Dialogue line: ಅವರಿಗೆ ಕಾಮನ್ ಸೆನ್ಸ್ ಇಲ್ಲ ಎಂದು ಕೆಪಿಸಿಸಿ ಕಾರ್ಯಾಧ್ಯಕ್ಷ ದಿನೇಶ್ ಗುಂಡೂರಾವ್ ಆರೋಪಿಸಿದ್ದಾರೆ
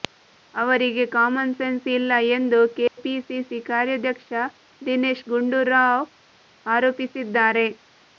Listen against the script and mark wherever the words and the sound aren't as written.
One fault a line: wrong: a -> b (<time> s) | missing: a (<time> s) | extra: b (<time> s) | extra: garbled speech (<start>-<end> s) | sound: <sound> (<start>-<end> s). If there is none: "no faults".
sound: dropout (2.9-3.0 s)